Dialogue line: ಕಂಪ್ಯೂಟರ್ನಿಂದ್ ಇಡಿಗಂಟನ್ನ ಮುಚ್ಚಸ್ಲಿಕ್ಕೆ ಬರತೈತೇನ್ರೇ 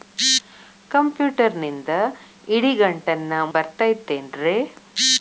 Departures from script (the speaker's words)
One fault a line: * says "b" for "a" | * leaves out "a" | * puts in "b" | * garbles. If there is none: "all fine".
* leaves out "ಮುಚ್ಚಸ್ಲಿಕ್ಕೆ"